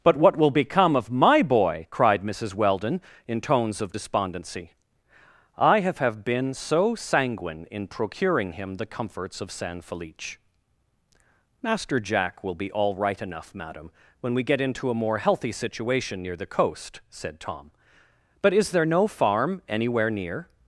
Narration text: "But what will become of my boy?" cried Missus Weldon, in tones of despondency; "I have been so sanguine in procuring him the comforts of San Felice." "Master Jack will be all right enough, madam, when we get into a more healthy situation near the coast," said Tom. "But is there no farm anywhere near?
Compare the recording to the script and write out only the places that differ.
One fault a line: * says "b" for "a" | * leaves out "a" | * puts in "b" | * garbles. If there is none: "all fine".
* puts in "have"